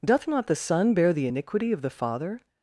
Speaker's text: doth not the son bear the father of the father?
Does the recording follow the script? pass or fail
fail